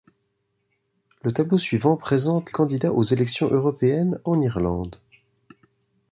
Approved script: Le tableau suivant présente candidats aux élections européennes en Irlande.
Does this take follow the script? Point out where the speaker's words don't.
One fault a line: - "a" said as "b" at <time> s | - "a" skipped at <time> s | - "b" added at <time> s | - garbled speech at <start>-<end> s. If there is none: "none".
none